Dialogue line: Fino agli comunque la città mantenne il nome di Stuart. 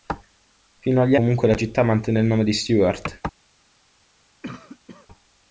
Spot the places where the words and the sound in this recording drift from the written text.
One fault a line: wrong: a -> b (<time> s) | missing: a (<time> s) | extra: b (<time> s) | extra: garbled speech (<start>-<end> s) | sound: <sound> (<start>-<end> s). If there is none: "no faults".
sound: cough (4.4-5.1 s)